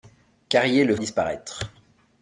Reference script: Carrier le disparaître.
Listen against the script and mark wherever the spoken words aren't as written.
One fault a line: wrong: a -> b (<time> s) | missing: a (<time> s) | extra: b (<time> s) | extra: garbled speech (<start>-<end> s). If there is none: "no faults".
no faults